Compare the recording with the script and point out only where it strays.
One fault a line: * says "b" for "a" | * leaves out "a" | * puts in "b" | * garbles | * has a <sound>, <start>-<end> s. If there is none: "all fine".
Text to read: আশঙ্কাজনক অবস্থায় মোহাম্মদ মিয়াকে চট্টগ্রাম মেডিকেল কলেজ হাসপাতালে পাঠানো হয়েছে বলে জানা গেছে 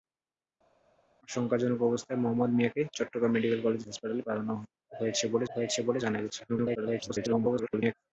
* puts in "হয়েছে বলে"
* garbles